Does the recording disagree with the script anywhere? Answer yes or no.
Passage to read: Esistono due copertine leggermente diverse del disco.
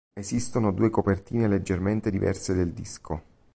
no